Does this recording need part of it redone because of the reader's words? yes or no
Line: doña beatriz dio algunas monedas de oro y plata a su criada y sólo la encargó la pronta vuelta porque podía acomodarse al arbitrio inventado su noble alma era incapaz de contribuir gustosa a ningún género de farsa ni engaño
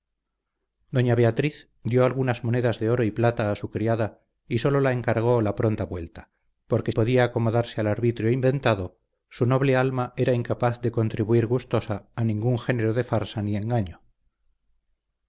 no